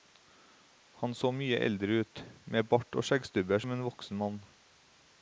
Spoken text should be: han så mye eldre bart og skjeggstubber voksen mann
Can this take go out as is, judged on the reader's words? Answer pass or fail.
fail